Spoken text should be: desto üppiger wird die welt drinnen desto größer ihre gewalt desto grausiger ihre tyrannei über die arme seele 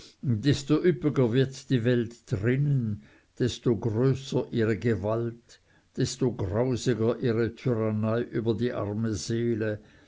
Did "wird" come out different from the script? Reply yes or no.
no